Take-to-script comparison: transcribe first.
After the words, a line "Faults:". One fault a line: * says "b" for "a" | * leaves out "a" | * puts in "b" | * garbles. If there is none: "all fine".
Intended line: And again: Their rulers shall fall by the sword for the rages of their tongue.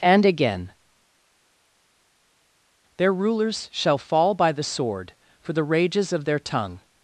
And again: Their rulers shall fall by the sword for the rages of their tongue.
Faults:
all fine